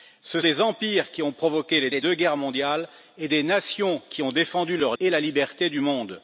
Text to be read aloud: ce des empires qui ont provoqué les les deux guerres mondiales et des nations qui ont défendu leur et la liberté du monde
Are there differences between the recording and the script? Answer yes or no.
no